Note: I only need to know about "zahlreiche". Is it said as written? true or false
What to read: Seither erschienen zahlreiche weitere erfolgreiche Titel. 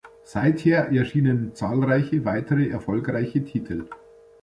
true